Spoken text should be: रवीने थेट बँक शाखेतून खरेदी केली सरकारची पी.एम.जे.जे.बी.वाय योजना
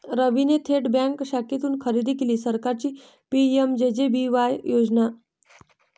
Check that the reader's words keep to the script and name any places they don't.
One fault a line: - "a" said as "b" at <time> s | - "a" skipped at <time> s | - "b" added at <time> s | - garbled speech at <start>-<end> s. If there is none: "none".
none